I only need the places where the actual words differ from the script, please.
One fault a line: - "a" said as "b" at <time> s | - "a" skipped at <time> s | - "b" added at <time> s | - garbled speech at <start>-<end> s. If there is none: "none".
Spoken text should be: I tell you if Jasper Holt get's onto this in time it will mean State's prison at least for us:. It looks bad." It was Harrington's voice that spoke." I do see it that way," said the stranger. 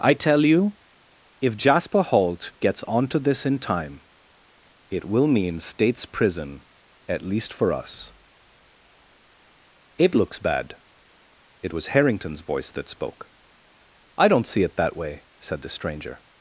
- "do" said as "don't" at 14.3 s